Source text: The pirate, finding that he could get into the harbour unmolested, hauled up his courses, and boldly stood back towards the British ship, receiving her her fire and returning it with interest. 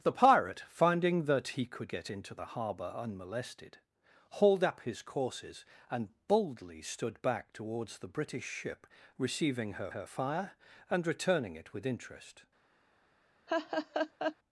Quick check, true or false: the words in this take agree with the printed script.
true